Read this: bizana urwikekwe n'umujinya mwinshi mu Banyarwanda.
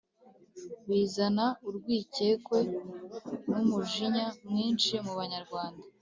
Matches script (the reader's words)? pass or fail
pass